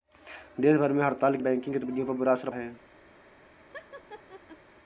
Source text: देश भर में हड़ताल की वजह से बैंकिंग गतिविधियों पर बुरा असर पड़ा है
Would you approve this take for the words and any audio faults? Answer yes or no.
no